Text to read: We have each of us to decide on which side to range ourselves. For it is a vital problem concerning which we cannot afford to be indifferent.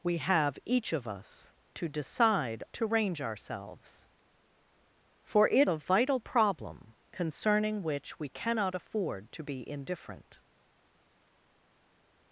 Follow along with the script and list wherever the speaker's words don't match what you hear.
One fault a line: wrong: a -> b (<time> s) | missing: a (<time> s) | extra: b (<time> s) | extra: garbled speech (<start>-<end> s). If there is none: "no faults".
missing: on which side (2.6 s)
missing: is (5.7 s)